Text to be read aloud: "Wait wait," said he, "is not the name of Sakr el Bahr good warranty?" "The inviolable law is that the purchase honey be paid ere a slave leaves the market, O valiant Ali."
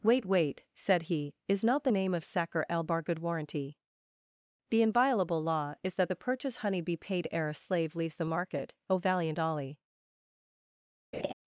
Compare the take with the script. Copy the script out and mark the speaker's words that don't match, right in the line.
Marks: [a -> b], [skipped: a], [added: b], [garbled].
"Wait wait," said he, "is not the name of Sakr el Bahr good warranty?" "The inviolable law is that the purchase honey be paid ere a slave leaves the market, O valiant Ali."